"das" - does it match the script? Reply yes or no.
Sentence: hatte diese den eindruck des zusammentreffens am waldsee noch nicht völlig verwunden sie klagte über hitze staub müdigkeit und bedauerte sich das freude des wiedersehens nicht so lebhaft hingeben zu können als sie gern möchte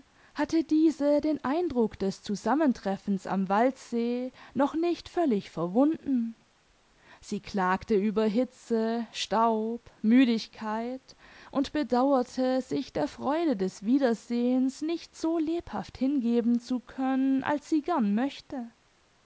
no